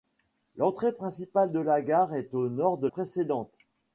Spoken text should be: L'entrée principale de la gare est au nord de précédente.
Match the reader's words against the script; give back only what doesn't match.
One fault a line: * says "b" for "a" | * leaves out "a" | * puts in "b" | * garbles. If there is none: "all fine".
all fine